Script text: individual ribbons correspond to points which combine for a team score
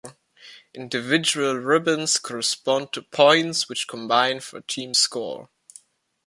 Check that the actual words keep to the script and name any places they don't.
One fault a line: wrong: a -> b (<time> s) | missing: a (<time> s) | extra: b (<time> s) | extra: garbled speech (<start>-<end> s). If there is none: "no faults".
no faults